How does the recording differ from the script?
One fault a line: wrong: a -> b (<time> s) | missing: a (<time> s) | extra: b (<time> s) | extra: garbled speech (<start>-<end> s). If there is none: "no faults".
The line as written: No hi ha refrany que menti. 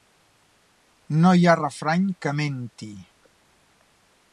no faults